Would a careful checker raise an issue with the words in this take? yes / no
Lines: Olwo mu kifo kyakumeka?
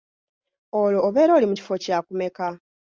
yes